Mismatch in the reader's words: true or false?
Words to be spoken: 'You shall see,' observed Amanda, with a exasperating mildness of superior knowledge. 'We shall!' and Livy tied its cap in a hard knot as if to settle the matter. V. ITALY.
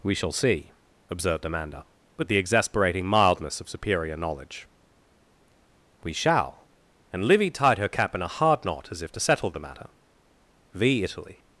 true